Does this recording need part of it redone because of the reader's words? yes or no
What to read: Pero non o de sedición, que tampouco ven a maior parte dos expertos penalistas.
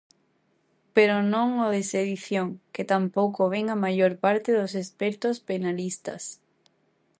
no